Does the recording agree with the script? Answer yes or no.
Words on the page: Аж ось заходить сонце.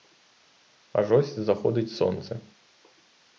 yes